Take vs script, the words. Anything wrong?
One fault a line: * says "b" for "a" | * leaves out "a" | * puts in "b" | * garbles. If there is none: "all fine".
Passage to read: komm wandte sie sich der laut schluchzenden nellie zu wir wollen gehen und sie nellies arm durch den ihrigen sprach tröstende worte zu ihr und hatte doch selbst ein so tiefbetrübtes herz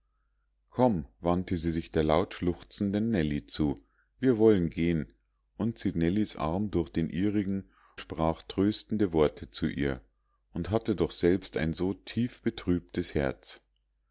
all fine